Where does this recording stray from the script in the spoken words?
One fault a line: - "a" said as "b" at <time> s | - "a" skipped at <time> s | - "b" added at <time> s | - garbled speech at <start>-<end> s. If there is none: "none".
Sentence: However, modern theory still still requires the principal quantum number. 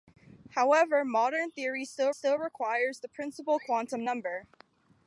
none